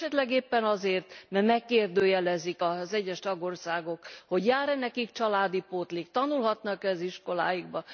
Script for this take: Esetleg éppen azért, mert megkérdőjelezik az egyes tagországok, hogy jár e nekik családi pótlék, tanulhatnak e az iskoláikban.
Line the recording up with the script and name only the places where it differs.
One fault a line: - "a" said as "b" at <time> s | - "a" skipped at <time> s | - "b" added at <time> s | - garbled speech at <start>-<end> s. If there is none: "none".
none